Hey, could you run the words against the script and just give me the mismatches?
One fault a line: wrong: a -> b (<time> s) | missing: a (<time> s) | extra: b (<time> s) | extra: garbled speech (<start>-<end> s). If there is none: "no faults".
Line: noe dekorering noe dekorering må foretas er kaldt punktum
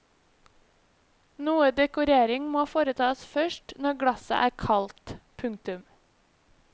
wrong: noe dekorering må foretas -> må foretas først når glasset (2.5 s)